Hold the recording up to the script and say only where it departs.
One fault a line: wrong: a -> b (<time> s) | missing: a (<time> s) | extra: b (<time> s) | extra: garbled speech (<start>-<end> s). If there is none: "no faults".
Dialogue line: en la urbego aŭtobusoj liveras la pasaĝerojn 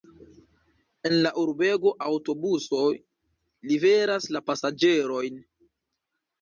no faults